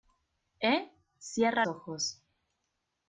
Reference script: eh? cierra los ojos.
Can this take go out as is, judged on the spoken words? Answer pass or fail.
fail